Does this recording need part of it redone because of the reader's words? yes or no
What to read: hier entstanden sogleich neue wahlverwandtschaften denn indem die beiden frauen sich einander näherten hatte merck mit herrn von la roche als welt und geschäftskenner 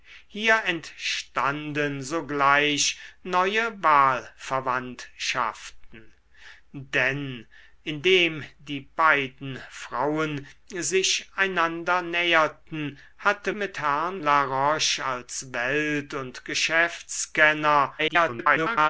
yes